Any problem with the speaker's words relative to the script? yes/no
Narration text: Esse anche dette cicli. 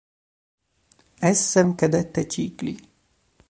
no